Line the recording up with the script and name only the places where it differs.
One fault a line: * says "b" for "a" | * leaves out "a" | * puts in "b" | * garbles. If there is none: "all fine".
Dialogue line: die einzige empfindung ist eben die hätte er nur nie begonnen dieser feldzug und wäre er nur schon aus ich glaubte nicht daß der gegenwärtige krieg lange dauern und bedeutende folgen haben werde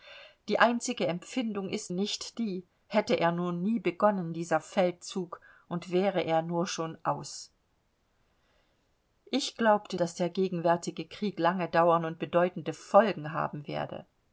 * says "nicht" for "eben"
* leaves out "nicht"